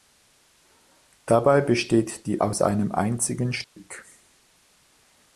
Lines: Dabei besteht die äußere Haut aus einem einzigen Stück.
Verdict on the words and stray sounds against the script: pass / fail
fail